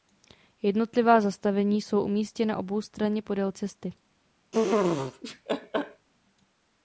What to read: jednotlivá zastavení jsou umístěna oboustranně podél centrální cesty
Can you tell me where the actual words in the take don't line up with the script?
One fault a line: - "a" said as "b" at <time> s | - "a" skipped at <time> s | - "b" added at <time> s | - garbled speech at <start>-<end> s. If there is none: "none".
- "centrální" skipped at 3.5 s